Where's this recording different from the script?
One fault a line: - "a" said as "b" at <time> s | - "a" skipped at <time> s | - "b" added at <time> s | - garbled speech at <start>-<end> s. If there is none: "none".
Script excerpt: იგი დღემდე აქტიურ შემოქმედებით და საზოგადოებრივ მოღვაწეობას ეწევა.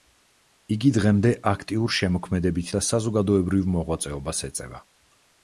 none